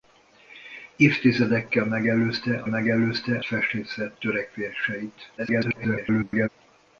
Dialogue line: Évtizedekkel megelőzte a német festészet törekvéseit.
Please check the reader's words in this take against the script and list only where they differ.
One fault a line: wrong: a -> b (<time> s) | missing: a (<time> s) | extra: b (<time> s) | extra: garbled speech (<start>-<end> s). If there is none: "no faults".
wrong: német -> megelőzte (2.7 s)
extra: garbled speech (5.4-6.5 s)